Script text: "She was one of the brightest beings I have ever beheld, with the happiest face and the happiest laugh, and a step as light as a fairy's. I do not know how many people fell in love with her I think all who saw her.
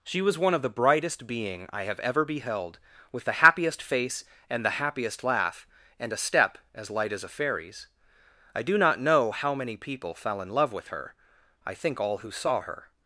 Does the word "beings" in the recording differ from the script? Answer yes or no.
yes